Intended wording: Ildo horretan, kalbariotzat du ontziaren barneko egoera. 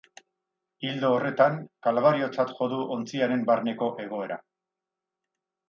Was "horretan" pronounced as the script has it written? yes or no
yes